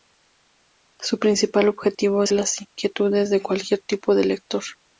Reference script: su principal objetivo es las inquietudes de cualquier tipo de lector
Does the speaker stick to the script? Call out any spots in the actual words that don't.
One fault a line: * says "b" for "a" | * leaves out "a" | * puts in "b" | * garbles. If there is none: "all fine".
all fine